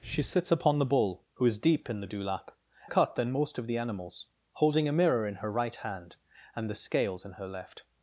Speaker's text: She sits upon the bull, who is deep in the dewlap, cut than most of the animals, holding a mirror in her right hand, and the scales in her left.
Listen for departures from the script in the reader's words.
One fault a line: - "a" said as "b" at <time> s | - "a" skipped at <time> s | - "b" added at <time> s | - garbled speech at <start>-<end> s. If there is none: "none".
none